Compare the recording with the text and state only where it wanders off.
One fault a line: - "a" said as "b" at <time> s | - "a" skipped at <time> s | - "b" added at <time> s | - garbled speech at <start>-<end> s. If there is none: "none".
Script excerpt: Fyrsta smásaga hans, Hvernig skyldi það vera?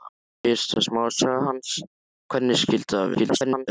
- garbled speech at 3.1-3.7 s